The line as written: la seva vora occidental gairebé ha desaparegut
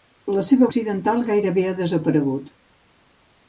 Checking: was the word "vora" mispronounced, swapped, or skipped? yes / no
yes